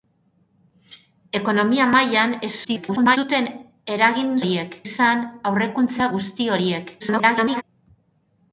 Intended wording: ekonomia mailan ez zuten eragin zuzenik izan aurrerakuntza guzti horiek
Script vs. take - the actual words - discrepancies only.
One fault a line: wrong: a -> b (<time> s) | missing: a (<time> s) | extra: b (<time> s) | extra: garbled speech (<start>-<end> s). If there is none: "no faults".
extra: garbled speech (2.6-3.2 s)
wrong: zuzenik -> horiek (4.4 s)
extra: garbled speech (7.0-7.6 s)